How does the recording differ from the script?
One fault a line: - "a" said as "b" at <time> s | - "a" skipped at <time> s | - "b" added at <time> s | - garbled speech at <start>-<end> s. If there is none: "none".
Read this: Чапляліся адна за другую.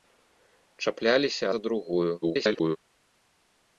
- "адна" skipped at 1.4 s
- garbled speech at 2.2-2.8 s